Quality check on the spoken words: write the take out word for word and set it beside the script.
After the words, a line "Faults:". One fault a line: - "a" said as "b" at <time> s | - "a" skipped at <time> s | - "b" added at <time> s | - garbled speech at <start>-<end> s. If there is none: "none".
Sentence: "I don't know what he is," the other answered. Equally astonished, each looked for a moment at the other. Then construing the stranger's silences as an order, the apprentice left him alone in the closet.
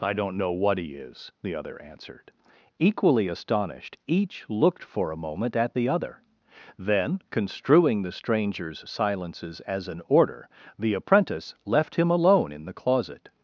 "I don't know what he is," the other answered. Equally astonished, each looked for a moment at the other. Then construing the stranger's silences as an order, the apprentice left him alone in the closet.
Faults:
none